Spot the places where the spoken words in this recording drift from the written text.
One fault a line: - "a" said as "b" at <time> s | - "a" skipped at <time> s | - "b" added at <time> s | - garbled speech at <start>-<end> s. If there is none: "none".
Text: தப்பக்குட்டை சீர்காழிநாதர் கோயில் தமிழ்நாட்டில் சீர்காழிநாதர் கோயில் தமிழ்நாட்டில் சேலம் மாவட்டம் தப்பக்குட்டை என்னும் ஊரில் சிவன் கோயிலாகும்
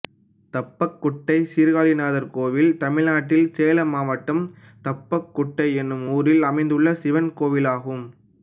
- "சீர்காழிநாதர் கோயில் தமிழ்நாட்டில்" skipped at 3.5 s
- "அமைந்துள்ள" added at 6.5 s